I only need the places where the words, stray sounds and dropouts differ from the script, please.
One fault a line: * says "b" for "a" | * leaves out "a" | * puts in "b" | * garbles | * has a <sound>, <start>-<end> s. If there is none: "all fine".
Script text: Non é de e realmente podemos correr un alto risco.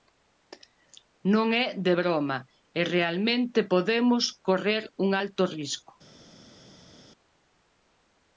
* puts in "broma"